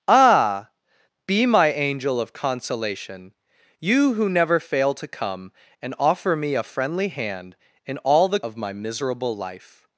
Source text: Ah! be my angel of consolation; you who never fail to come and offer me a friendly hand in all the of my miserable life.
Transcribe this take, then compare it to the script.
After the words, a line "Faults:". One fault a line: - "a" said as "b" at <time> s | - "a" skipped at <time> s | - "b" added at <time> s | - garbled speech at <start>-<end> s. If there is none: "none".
Ah! be my angel of consolation; you who never fail to come and offer me a friendly hand in all the of my miserable life.
Faults:
none